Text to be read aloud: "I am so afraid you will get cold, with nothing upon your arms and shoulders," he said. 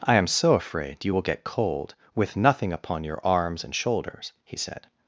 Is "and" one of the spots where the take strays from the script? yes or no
no